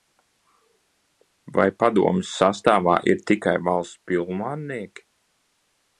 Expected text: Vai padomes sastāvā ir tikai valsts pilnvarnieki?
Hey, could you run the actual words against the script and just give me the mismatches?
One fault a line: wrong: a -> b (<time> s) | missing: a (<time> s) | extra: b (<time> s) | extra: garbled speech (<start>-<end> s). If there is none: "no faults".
no faults